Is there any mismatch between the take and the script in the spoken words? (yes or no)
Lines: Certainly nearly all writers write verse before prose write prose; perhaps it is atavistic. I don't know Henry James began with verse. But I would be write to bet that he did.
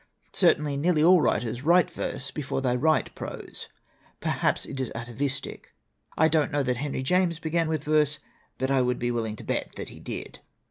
yes